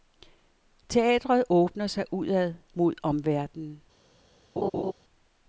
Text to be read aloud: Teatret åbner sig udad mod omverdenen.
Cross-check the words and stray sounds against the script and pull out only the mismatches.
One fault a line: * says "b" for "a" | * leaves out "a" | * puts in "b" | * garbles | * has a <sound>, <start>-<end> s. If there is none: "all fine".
* has a laugh, 4.6-4.9 s